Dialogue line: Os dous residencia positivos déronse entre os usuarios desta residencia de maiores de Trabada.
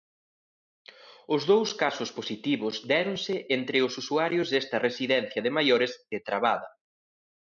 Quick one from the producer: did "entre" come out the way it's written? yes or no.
yes